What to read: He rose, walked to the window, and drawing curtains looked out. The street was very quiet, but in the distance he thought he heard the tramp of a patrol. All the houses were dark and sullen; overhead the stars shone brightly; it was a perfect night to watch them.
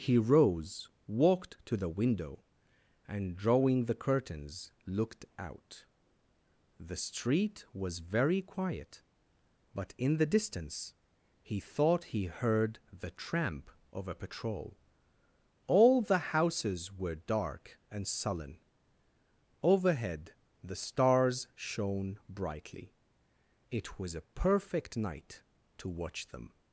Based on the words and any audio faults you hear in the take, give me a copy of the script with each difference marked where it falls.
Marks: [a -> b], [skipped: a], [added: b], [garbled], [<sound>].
He rose, walked to the window, and drawing [added: the] curtains looked out. The street was very quiet, but in the distance he thought he heard the tramp of a patrol. All the houses were dark and sullen; overhead the stars shone brightly; it was a perfect night to watch them.